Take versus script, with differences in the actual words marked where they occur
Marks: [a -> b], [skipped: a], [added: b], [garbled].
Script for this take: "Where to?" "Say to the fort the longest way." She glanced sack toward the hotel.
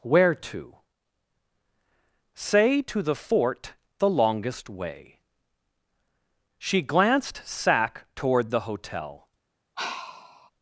"Where to?" "Say to the fort the longest way." She glanced sack toward the hotel.